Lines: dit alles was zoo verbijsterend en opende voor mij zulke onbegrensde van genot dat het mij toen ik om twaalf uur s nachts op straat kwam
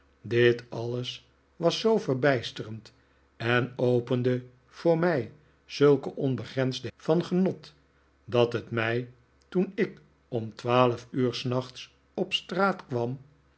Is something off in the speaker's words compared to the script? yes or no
no